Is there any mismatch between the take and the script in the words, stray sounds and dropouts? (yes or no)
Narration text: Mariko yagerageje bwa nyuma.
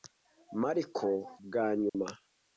yes